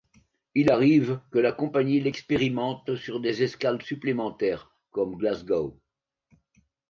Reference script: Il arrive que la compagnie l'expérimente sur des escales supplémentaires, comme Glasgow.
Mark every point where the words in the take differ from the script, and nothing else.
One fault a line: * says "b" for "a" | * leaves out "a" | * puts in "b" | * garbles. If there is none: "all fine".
all fine